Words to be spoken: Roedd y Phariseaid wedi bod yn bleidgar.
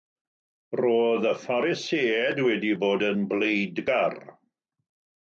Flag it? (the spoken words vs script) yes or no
no